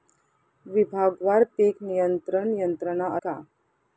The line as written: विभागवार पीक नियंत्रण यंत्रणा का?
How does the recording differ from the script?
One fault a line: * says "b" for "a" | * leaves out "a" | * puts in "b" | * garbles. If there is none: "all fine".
all fine